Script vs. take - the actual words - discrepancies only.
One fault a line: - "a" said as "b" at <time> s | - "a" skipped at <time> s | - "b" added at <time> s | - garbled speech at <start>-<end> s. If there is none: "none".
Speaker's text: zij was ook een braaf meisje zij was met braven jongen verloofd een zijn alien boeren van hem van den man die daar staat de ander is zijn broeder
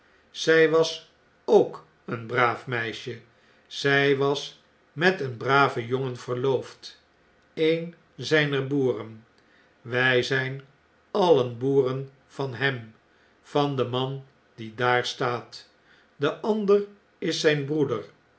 - "een" added at 5.2 s
- "zijner boeren wij" added at 8.2 s